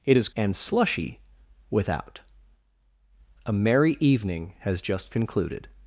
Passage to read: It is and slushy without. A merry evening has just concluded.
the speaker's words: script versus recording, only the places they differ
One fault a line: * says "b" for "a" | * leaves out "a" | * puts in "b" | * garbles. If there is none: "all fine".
all fine